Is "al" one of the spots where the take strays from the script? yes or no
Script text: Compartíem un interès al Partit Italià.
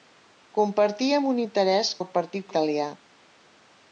no